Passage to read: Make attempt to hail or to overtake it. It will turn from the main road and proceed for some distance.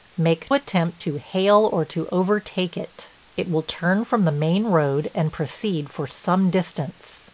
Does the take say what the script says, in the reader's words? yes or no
yes